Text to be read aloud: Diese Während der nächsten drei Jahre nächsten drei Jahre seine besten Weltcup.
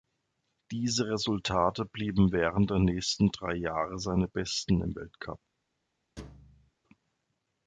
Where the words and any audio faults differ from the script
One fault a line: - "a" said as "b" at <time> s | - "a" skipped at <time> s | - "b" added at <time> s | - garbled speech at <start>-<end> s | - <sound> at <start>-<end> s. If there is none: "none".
- "Resultate blieben" added at 1.1 s
- "nächsten drei Jahre" skipped at 4.0 s
- "im" added at 4.8 s
- thud at 6.2-6.7 s